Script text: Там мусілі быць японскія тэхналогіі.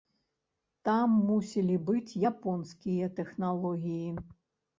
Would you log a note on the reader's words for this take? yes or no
no